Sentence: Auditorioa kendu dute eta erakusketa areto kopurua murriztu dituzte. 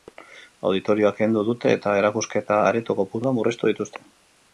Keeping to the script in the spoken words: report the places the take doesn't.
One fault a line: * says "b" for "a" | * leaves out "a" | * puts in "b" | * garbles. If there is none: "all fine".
all fine